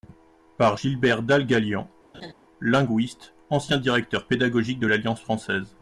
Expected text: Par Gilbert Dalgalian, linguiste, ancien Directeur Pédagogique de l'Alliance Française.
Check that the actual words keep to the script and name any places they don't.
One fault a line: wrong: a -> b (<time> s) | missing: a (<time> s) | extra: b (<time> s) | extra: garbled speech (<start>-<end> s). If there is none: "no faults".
no faults